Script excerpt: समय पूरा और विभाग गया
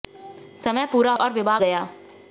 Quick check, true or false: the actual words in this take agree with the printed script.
true